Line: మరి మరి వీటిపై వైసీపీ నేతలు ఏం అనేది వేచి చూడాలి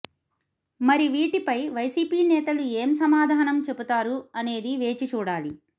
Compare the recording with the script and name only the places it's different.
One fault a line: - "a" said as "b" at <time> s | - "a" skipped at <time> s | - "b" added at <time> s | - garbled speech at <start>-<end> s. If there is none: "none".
- "మరి" skipped at 1.1 s
- "సమాధానం చెబుతారు" added at 3.0 s